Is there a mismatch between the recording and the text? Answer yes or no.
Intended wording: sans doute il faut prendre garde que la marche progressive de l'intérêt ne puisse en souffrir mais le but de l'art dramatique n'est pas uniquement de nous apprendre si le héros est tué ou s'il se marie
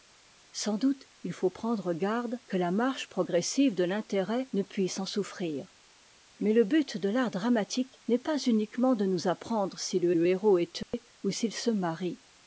yes